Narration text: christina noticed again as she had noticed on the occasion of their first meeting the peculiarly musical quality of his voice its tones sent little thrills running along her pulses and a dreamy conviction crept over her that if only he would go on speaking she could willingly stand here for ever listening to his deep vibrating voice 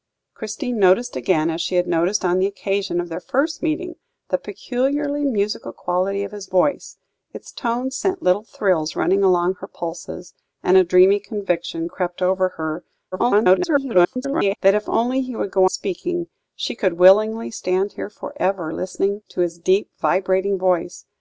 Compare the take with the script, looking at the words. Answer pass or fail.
fail